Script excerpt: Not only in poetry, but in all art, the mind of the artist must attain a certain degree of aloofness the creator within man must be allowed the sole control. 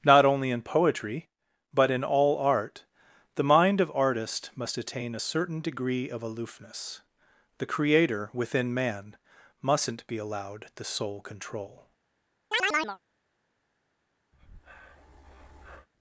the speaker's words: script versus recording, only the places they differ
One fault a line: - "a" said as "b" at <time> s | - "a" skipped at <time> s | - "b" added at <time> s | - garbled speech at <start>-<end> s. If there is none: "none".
- "the" skipped at 3.9 s
- "must" said as "mustn't" at 9.6 s